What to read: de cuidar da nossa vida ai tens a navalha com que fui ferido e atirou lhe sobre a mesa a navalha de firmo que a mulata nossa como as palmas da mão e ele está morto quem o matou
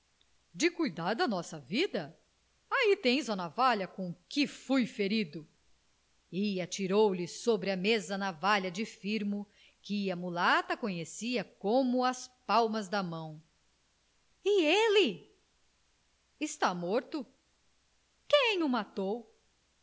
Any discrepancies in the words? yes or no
yes